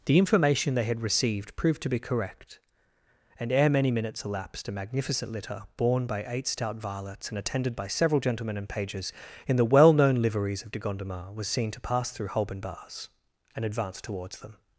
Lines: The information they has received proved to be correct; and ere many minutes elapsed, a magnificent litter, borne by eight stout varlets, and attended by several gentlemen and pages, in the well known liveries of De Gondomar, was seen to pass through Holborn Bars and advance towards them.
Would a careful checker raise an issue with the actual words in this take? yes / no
yes